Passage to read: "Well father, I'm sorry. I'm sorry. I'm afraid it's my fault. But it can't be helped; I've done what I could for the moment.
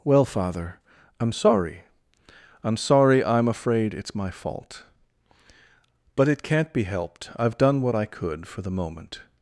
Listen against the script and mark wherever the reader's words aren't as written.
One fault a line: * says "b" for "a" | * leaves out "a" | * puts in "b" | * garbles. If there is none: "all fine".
all fine